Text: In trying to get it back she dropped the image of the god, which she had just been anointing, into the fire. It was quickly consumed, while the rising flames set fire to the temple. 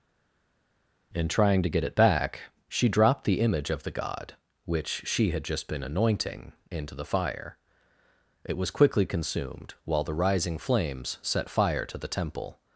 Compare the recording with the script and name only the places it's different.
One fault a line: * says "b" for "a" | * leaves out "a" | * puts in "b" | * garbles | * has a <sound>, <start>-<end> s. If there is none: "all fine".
all fine